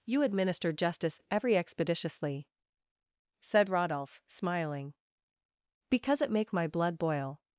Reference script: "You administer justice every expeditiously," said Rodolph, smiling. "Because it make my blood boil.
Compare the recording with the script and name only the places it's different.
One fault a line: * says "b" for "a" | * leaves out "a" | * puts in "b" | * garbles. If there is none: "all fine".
all fine